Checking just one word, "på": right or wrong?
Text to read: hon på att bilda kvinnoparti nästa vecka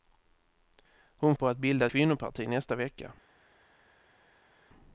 right